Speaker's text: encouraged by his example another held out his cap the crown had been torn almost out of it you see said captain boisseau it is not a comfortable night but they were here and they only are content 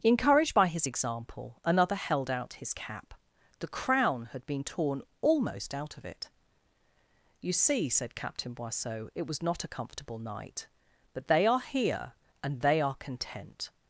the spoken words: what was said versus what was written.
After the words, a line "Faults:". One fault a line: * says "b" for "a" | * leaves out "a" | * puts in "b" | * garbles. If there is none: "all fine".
encouraged by his example another held out his cap the crown had been torn almost out of it you see said captain boisseau it was not a comfortable night but they are here and they are content
Faults:
* says "was" for "is"
* says "are" for "were"
* leaves out "only"